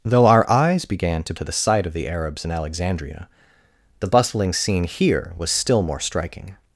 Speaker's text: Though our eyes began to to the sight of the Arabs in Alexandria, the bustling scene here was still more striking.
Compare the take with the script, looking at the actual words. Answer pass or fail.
pass